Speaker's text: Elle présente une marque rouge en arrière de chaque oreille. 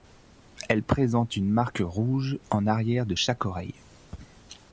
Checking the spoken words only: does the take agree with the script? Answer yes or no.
yes